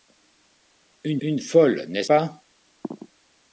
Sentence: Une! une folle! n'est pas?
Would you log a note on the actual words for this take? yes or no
no